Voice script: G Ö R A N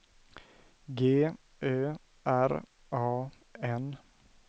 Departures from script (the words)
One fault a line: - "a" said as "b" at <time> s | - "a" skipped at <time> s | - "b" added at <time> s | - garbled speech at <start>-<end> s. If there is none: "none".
none